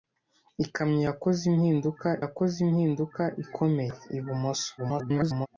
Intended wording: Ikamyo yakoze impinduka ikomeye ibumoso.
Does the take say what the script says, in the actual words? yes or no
no